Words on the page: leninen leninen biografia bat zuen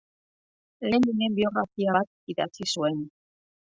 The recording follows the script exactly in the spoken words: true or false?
false